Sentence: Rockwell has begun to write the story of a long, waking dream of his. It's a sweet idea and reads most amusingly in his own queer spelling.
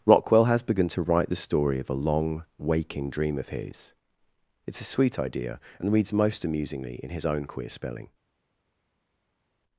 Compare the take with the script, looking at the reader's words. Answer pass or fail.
pass